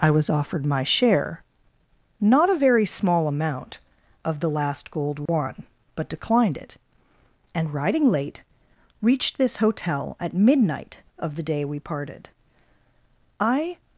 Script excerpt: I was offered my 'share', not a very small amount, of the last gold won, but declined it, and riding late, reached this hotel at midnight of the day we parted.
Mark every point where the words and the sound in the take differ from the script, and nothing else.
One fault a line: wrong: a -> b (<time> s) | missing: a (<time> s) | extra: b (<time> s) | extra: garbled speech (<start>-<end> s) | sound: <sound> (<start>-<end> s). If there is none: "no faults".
sound: dropout (5.3-5.3 s)
extra: I (13.4 s)